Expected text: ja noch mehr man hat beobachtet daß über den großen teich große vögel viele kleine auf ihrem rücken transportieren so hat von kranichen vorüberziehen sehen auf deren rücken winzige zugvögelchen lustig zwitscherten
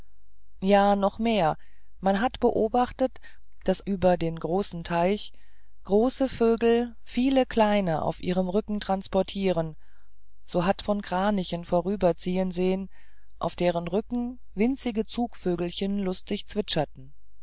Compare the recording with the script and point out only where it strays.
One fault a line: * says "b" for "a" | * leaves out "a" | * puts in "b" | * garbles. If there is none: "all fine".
all fine